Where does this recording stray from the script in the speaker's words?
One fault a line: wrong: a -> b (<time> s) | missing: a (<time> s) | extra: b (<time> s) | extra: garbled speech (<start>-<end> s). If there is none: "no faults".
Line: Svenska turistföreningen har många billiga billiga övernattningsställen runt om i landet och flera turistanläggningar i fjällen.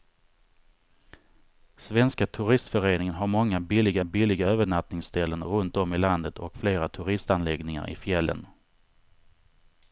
no faults